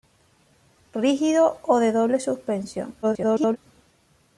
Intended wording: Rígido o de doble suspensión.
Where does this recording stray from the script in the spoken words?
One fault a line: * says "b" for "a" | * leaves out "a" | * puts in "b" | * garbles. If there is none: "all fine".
* garbles